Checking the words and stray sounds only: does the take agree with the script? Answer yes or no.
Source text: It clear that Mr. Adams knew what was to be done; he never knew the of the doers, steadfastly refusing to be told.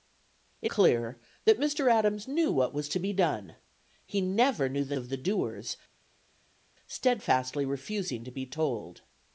yes